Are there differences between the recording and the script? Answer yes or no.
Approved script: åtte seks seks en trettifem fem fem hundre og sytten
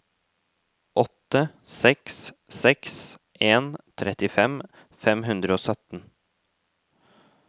yes